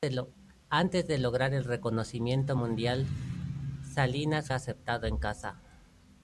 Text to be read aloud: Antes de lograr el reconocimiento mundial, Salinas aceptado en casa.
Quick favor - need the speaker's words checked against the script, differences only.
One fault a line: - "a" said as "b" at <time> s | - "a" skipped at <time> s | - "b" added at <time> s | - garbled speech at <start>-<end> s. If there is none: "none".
none